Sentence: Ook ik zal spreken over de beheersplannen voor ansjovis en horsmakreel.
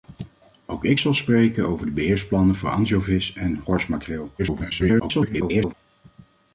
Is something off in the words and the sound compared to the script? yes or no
yes